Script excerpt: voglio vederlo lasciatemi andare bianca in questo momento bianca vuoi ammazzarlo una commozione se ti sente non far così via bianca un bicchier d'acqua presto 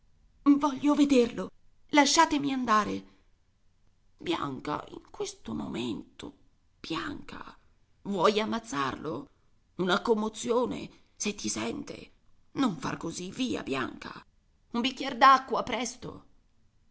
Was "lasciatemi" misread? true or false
false